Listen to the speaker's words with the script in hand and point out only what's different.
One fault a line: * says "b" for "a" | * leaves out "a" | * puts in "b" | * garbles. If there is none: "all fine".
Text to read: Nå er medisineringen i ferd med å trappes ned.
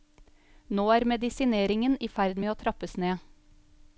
all fine